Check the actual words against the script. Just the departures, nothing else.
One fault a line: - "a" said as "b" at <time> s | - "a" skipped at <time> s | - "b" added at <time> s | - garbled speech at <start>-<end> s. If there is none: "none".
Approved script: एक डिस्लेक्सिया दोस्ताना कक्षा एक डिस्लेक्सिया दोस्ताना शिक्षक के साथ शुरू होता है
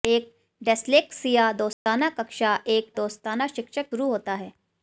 - "डिस्लेक्सिया" skipped at 2.9 s
- "के साथ" skipped at 3.9 s